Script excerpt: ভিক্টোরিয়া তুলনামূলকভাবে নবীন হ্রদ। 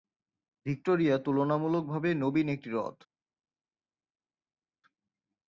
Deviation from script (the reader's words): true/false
true